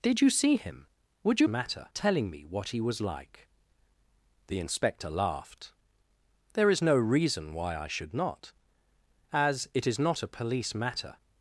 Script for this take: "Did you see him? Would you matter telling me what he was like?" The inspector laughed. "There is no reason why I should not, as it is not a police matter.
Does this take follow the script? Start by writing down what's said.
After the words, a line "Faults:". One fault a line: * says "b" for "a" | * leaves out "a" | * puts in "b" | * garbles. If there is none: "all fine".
"Did you see him? Would you matter telling me what he was like?" The inspector laughed. "There is no reason why I should not, as it is not a police matter.
Faults:
all fine